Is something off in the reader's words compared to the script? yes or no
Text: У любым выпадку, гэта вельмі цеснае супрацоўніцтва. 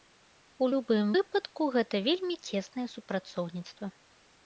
no